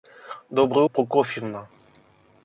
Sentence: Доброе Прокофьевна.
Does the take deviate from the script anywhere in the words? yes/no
no